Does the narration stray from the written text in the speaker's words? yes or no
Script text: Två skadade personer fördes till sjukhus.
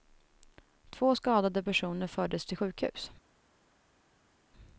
no